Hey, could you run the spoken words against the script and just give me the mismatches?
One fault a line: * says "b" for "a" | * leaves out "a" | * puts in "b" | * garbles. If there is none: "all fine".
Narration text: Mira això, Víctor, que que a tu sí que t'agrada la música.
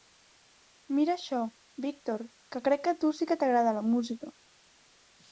* puts in "crec"